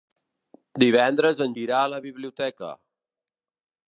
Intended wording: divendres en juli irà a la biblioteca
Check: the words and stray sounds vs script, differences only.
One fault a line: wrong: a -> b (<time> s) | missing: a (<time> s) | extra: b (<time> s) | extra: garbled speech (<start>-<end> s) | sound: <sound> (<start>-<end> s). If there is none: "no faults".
missing: juli (1.5 s)